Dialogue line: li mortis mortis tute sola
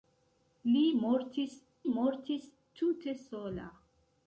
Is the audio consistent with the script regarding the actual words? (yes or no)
yes